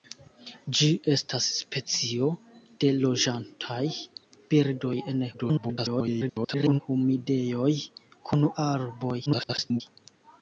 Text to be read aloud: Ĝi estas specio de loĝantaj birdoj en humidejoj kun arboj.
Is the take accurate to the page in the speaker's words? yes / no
no